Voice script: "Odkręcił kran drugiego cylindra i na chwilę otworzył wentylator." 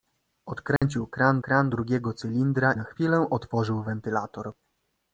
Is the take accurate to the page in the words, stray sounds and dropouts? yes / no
no